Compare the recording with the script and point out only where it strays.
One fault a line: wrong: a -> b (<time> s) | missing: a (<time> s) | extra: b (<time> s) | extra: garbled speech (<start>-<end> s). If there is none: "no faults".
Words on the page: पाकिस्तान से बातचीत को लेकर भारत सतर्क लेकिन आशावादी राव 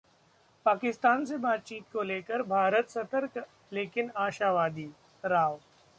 no faults